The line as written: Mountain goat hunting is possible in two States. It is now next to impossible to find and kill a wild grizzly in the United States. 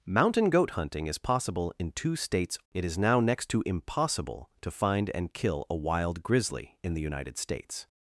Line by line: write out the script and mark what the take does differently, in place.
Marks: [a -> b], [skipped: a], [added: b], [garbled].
Mountain goat hunting is possible in two States. It is now next to impossible to find and kill a wild grizzly in the United States.